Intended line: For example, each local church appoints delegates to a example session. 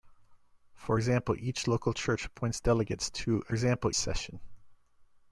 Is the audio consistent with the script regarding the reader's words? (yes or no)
yes